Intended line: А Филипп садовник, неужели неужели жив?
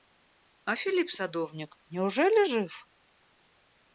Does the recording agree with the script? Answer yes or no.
no